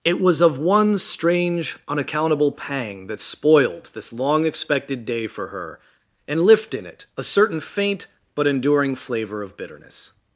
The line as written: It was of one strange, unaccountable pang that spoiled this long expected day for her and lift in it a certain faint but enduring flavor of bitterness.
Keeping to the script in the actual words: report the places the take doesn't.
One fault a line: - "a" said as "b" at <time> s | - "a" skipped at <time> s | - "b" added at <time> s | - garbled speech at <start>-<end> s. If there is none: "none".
none